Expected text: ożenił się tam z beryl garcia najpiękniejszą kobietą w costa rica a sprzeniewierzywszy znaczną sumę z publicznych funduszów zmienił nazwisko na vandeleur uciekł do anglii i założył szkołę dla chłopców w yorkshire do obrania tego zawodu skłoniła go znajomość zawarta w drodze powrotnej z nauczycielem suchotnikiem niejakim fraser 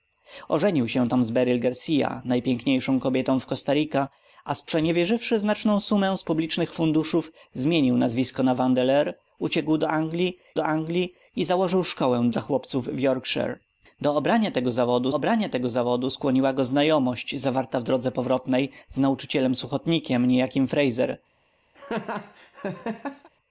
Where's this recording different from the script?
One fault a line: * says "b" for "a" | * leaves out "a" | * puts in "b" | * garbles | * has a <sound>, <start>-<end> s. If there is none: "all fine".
* puts in "do anglii"
* puts in "obrania tego zawodu"
* has a laugh, 21.7-23.3 s